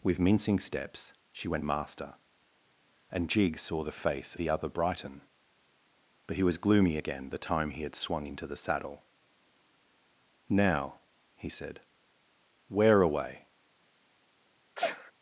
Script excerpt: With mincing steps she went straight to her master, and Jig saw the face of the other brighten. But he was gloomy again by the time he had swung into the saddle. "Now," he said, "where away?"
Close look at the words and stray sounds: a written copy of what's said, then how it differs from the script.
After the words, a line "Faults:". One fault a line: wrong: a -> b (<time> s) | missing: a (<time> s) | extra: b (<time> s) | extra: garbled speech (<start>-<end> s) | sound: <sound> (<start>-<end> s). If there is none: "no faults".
With mincing steps she went master, and Jig saw the face the other brighten. But he was gloomy again the time he had swung into the saddle. "Now," he said, "where away?"
Faults:
missing: straight to her (1.6 s)
missing: of (4.4 s)
missing: by (7.3 s)
sound: sneeze (14.8-15.1 s)